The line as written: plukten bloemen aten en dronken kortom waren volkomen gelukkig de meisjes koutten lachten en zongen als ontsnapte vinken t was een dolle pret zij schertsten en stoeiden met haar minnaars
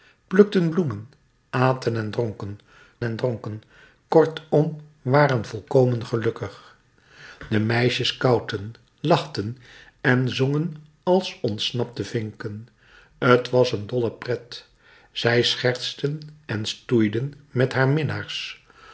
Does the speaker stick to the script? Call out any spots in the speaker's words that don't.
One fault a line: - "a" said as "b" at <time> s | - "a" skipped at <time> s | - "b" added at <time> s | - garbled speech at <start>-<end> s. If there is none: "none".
- "en dronken" added at 3.0 s